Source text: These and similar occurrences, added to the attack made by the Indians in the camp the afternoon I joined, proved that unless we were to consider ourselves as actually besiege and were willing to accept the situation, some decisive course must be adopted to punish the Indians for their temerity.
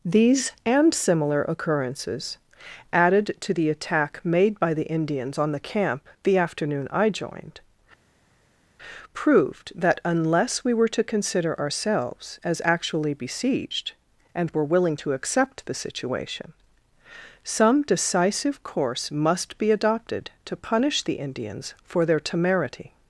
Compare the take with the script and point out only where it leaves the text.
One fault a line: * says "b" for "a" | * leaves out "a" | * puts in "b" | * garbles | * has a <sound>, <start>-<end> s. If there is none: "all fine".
* says "on" for "in"
* says "besieged" for "besiege"